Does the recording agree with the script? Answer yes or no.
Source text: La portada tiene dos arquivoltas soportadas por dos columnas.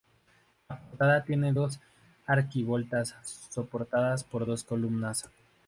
yes